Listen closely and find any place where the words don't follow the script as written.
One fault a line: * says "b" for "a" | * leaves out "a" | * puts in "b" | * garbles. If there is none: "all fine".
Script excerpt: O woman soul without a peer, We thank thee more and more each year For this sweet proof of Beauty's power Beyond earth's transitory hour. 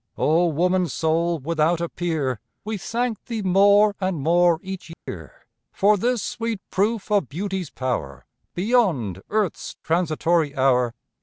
all fine